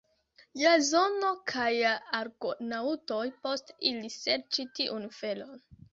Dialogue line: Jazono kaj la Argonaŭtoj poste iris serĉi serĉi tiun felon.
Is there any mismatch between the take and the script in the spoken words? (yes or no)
yes